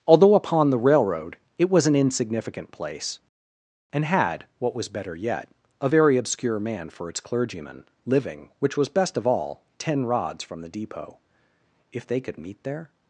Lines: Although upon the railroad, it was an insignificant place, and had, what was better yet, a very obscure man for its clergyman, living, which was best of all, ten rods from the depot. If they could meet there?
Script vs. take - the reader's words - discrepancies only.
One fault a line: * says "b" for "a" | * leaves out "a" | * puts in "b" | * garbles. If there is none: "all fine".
all fine